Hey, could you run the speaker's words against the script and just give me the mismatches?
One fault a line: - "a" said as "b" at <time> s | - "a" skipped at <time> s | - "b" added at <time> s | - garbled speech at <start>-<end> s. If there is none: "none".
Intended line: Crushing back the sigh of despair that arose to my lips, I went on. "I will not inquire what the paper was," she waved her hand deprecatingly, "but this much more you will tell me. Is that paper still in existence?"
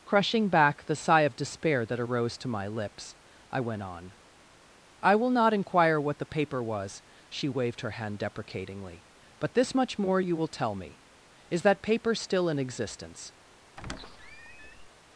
none